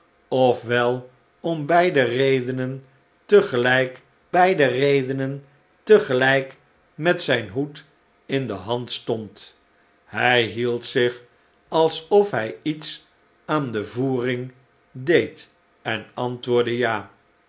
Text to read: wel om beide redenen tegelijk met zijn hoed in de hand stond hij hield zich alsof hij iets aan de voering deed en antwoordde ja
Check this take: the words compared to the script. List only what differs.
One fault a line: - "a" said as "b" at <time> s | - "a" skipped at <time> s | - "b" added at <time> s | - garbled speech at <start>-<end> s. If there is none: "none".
- "beide redenen tegelijk" added at 4.3 s